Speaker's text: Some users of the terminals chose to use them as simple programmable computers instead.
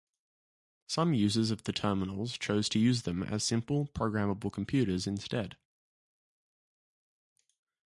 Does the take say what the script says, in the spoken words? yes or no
yes